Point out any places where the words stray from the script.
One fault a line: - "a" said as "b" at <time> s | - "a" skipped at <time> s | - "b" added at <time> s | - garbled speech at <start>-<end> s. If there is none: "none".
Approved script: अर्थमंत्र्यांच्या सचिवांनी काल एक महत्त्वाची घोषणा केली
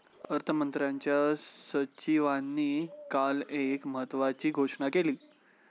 none